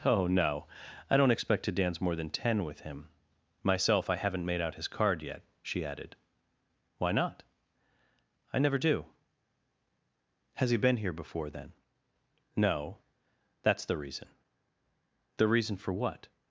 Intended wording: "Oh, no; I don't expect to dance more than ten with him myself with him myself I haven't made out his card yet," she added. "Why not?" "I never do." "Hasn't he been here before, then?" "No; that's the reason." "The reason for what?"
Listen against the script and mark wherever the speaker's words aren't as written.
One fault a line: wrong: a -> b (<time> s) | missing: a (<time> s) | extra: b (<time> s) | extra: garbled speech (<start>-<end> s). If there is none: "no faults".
missing: with him myself (4.1 s)
wrong: Hasn't -> Has (10.5 s)